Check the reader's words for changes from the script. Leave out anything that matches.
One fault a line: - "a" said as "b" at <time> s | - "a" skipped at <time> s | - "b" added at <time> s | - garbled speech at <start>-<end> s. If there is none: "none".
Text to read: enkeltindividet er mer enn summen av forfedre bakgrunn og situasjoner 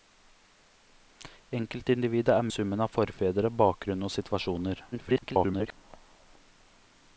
- "mer enn" skipped at 2.5 s
- garbled speech at 4.9-5.7 s